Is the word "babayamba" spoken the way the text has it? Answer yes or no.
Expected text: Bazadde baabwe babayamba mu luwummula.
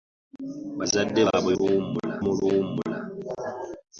no